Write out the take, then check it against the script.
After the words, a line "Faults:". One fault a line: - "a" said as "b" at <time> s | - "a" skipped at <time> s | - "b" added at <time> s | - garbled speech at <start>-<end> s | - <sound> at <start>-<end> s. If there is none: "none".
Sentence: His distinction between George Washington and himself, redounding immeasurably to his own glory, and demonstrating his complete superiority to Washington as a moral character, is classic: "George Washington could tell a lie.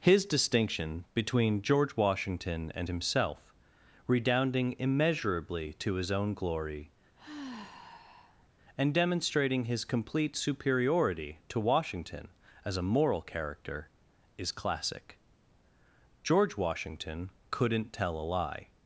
His distinction between George Washington and himself, redounding immeasurably to his own glory, and demonstrating his complete superiority to Washington as a moral character, is classic: "George Washington couldn't tell a lie.
Faults:
- sigh at 7.1-8.5 s
- "could" said as "couldn't" at 17.5 s